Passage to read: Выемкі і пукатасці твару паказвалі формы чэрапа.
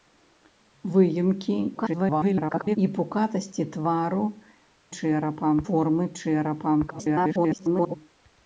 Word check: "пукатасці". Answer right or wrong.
right